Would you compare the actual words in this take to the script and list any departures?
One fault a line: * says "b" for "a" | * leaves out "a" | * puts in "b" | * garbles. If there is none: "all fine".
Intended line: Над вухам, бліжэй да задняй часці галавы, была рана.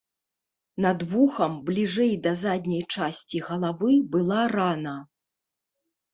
all fine